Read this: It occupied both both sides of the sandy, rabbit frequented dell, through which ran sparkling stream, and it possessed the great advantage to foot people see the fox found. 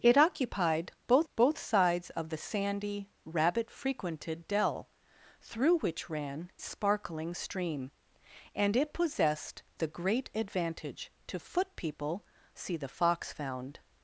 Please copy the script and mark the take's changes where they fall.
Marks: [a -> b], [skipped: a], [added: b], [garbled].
It occupied both both sides of the sandy, rabbit frequented dell, through which ran sparkling stream, and it possessed the great advantage to foot people see the fox found.